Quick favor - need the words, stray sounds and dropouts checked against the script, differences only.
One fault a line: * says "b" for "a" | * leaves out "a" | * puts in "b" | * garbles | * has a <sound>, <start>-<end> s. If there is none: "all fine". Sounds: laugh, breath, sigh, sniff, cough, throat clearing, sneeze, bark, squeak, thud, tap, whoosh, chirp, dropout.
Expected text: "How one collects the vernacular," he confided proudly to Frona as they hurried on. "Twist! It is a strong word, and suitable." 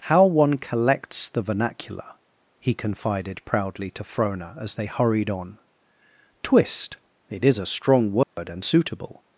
* has a dropout, 8.2-8.4 s